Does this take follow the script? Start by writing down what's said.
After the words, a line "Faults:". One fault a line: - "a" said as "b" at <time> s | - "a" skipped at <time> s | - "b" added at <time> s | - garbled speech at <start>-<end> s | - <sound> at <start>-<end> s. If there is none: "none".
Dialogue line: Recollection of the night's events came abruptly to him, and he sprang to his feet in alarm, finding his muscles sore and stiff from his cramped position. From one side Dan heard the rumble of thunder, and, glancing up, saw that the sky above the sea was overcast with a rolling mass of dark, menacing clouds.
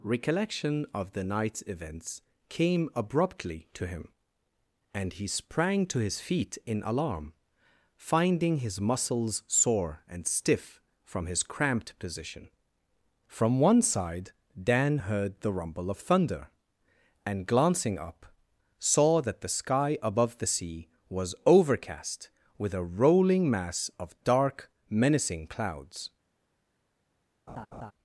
Recollection of the night's events came abruptly to him, and he sprang to his feet in alarm, finding his muscles sore and stiff from his cramped position. From one side Dan heard the rumble of thunder, and, glancing up, saw that the sky above the sea was overcast with a rolling mass of dark, menacing clouds.
Faults:
- laugh at 27.5-27.9 s